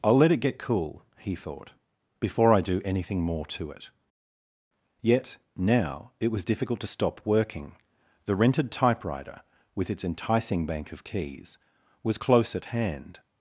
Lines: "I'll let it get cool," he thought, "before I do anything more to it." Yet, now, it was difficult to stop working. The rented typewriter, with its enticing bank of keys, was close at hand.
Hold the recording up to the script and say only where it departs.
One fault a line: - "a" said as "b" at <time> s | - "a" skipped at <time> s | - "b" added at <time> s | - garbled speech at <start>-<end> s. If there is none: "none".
none